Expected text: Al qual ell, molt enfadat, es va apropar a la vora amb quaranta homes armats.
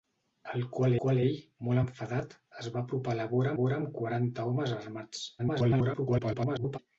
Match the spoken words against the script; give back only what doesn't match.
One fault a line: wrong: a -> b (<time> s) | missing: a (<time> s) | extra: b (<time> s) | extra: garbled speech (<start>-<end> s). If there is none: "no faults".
extra: qual (1.0 s)
extra: vora (3.6 s)
extra: garbled speech (5.4-6.8 s)